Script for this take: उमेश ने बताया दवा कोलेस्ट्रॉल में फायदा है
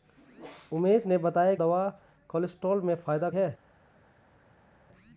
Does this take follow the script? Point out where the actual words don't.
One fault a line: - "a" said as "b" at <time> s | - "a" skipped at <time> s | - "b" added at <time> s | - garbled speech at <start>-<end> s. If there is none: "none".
none